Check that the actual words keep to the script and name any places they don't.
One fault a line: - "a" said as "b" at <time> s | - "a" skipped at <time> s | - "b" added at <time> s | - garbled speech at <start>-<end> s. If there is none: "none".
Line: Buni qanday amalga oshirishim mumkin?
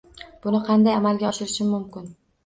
none